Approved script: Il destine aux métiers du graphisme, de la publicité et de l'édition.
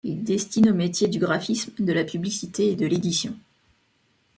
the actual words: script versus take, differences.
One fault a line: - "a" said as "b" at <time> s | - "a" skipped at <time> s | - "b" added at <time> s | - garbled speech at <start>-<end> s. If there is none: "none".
none